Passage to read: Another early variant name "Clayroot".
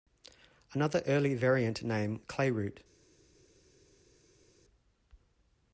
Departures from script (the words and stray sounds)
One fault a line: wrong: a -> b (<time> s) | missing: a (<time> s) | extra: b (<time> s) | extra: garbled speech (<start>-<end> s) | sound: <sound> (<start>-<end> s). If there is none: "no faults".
no faults